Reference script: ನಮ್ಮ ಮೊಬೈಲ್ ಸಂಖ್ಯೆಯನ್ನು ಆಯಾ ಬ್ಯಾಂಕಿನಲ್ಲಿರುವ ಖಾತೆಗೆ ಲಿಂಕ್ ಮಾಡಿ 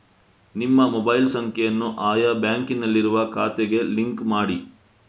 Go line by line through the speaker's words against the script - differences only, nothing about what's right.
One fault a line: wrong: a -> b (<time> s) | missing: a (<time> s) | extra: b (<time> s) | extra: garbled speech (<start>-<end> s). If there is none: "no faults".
wrong: ನಮ್ಮ -> ನಿಮ್ಮ (0.6 s)